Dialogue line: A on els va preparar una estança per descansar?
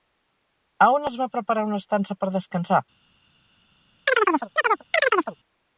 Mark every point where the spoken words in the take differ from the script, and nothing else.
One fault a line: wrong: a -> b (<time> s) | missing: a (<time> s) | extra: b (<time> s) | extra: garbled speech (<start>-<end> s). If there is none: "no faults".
no faults